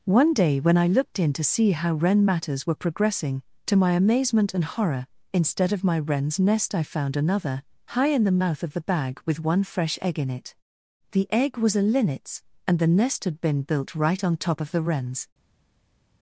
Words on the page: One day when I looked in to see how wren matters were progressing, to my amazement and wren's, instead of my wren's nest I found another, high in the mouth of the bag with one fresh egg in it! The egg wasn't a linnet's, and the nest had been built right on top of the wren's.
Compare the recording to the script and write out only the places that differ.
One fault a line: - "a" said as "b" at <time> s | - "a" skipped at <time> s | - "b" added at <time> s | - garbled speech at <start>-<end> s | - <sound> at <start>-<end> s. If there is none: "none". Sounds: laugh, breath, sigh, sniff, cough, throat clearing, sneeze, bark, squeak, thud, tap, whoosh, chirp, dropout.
- "wren's" said as "horror" at 4.6 s
- "wasn't" said as "was" at 11.6 s